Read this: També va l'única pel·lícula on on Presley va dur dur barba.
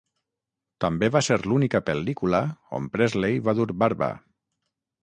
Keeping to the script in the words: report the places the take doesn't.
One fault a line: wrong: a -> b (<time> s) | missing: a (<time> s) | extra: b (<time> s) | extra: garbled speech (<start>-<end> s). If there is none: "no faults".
extra: ser (1.3 s)
missing: on (2.9 s)
missing: dur (3.7 s)